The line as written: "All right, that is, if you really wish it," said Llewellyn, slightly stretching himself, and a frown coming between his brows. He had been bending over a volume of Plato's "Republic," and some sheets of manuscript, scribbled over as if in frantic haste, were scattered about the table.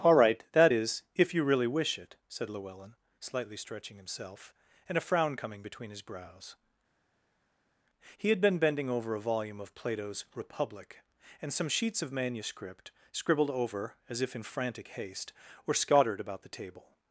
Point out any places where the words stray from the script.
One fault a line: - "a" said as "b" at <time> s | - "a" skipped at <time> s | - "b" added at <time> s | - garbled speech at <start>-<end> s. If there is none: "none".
none